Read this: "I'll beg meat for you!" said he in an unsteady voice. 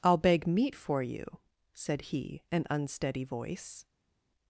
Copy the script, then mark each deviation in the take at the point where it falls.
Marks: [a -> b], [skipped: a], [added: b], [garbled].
"I'll beg meat for you!" said he [skipped: in] an unsteady voice.